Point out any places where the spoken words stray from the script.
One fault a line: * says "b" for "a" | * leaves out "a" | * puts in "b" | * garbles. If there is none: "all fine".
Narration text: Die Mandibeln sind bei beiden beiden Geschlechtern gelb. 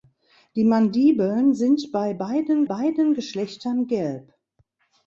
all fine